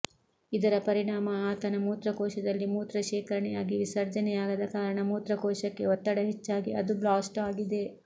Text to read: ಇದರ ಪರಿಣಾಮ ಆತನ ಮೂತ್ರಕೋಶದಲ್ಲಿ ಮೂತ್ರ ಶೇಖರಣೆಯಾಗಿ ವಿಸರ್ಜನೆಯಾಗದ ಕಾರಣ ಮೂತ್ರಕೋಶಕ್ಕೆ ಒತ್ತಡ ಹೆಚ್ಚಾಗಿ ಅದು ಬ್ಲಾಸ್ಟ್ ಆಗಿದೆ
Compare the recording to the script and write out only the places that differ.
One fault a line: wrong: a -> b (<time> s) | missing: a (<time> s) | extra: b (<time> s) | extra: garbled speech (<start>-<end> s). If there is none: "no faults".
no faults